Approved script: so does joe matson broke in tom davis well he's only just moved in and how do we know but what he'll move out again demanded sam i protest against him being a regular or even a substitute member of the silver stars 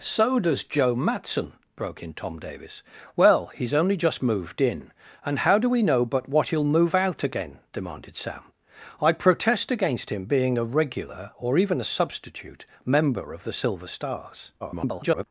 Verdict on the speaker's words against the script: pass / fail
fail